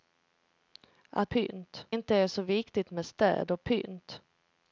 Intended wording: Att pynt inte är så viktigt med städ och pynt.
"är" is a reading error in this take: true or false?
false